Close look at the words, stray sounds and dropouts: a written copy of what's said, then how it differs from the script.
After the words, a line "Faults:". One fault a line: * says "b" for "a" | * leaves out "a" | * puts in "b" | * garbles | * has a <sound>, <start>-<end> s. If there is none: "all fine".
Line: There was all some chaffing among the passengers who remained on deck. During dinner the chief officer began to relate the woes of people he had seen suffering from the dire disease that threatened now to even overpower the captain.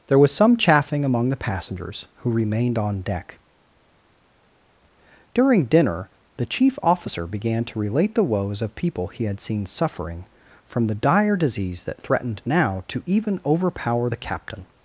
There was some chaffing among the passengers who remained on deck. During dinner the chief officer began to relate the woes of people he had seen suffering from the dire disease that threatened now to even overpower the captain.
Faults:
* leaves out "all"